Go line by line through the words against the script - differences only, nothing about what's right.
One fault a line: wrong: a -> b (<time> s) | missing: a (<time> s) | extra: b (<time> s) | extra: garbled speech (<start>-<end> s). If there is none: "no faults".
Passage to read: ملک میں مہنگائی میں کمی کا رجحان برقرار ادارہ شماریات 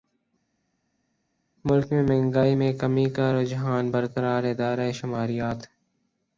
no faults